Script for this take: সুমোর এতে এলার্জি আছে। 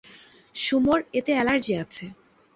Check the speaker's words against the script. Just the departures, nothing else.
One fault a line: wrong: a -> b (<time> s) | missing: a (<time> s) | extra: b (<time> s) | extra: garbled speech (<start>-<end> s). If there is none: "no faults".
no faults